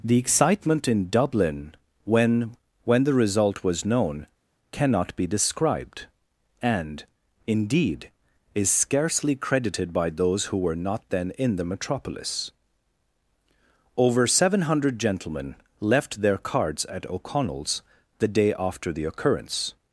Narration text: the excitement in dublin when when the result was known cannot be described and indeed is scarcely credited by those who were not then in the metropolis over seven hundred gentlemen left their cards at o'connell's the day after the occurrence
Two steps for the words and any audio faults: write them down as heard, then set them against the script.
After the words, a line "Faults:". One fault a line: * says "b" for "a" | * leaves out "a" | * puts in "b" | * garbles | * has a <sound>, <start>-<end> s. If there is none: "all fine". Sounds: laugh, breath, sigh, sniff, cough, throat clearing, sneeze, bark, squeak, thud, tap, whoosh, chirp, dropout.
the excitement in dublin when when the result was known cannot be described and indeed is scarcely credited by those who were not then in the metropolis over seven hundred gentlemen left their cards at o'connell's the day after the occurrence
Faults:
all fine